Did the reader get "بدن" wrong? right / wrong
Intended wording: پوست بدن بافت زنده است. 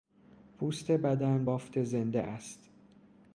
right